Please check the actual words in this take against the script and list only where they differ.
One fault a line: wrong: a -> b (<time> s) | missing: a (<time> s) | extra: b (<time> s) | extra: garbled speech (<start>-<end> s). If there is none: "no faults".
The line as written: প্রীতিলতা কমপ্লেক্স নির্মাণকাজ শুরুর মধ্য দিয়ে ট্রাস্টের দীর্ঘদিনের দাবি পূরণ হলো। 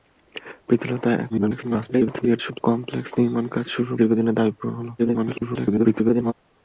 extra: garbled speech (1.3-2.6 s)
missing: মধ্য দিয়ে ট্রাস্টের (4.0 s)
extra: garbled speech (5.0-6.3 s)